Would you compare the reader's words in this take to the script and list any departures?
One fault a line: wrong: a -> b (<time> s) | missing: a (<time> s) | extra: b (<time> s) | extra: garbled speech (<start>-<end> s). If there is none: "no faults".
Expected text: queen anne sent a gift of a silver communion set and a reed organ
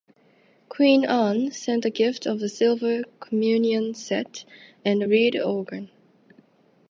no faults